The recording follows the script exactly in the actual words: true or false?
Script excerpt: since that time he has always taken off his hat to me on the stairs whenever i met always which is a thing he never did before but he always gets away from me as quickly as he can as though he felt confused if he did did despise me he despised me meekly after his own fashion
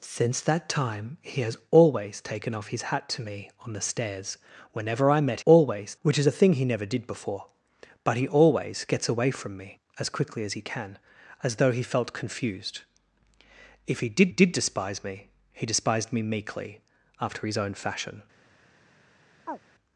true